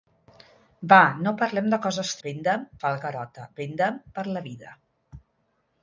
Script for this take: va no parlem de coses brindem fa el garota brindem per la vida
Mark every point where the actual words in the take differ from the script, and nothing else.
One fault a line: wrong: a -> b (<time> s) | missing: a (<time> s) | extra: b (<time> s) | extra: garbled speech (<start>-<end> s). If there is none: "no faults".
no faults